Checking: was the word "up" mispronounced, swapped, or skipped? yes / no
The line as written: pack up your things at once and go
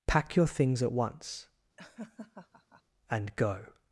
yes